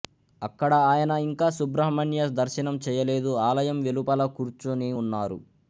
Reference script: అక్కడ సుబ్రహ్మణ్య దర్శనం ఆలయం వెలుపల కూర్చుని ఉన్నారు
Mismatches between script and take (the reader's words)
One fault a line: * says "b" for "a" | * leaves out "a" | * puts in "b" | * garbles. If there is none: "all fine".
* puts in "ఆయన ఇంకా"
* puts in "చేయలేదు"